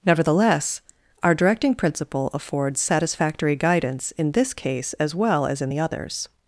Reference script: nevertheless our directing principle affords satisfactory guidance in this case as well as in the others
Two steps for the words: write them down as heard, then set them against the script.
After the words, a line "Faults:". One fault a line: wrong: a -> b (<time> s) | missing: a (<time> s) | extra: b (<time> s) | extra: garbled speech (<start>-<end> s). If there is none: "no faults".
nevertheless our directing principle affords satisfactory guidance in this case as well as in the others
Faults:
no faults